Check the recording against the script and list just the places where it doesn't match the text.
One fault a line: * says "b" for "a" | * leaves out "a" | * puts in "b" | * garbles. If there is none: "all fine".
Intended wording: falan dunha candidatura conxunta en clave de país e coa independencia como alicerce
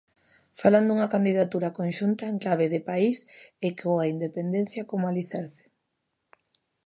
all fine